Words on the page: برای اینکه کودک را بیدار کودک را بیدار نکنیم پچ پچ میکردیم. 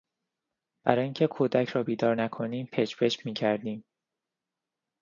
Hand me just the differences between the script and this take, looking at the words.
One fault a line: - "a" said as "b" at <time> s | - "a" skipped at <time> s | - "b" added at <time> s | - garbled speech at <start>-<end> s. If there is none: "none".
- "کودک را بیدار" skipped at 2.2 s